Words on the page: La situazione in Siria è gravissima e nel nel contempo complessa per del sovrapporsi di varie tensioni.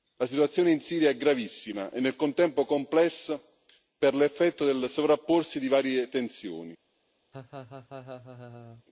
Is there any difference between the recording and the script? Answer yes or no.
yes